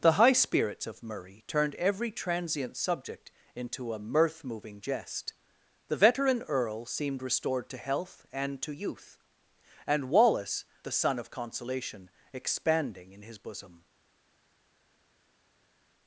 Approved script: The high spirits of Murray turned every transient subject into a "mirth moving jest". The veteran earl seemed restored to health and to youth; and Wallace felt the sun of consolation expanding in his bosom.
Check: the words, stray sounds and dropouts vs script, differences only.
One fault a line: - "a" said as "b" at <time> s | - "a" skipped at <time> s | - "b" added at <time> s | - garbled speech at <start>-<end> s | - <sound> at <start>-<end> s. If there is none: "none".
- "felt" skipped at 10.6 s